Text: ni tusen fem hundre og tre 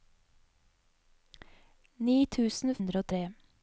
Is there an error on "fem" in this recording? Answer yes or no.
yes